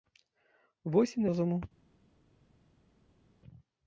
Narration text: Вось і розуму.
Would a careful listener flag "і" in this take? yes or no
no